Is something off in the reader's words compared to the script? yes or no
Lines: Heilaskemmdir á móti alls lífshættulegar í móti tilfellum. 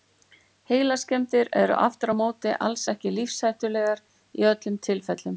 yes